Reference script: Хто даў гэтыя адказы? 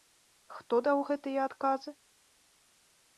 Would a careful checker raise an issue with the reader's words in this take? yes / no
no